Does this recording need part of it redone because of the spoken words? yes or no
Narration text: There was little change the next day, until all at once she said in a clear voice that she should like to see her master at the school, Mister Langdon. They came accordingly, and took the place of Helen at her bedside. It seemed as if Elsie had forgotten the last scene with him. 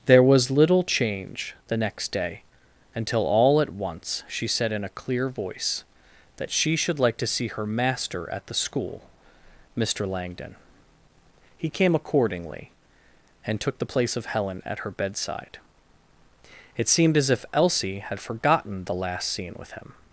yes